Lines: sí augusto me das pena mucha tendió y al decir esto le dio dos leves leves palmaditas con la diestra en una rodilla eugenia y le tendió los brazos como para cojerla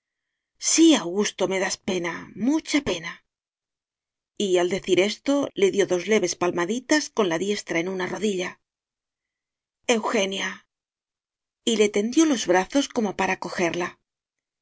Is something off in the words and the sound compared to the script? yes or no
yes